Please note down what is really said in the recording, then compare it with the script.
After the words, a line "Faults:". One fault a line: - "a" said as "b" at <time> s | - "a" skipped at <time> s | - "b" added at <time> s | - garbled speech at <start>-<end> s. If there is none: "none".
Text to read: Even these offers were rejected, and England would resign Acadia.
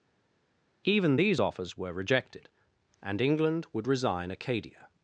Even these offers were rejected, and England would resign Acadia.
Faults:
none